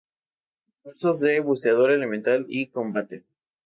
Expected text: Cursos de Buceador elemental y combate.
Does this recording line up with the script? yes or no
yes